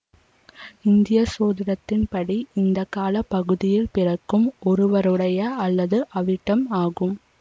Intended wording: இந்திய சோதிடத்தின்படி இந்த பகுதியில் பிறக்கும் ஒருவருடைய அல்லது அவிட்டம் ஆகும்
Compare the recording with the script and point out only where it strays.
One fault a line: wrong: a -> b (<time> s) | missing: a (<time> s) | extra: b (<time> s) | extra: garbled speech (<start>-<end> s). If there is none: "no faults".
extra: கால (2.9 s)